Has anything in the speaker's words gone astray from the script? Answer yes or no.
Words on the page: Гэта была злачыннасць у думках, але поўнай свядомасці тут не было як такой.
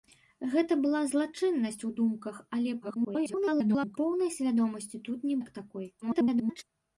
yes